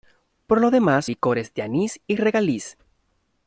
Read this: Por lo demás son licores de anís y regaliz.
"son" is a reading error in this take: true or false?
true